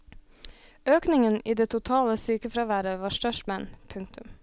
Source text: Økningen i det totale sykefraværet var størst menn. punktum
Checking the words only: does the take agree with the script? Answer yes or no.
yes